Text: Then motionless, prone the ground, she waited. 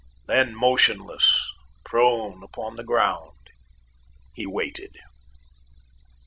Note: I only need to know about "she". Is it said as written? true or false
false